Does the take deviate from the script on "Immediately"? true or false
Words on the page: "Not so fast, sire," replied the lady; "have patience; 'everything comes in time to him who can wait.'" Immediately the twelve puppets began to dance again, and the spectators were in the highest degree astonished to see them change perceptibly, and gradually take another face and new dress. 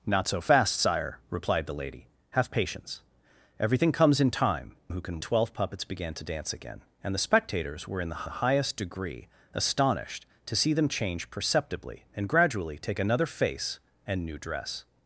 true